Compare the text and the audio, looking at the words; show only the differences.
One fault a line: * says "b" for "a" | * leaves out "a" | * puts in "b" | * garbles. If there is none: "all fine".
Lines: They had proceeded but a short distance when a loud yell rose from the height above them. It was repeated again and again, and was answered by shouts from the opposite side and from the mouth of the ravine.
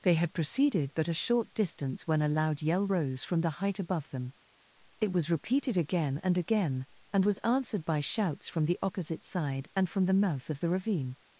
all fine